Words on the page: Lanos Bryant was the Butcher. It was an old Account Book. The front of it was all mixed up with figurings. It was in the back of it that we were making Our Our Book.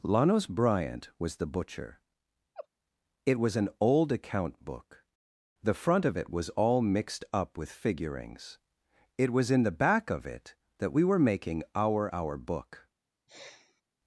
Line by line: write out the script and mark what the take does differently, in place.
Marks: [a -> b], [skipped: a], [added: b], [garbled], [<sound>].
Lanos Bryant was the Butcher. [laugh] It was an old Account Book. The front of it was all mixed up with figurings. It was in the back of it that we were making Our Our Book. [sniff]